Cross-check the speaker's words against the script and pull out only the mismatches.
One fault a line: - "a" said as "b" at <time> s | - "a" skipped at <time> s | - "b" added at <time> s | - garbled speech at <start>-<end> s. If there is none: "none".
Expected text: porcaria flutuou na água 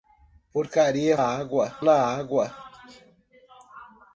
- "flutuou" said as "água" at 1.1 s